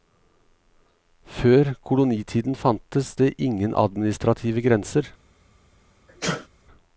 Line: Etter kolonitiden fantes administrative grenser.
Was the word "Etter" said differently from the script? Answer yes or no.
yes